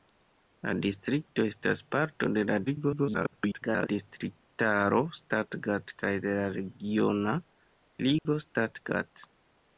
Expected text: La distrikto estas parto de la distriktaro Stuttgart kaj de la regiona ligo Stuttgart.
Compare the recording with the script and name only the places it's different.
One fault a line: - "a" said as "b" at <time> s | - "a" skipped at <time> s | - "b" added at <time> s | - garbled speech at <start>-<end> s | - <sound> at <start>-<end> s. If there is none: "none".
- garbled speech at 2.7-3.9 s
- dropout at 8.2-8.3 s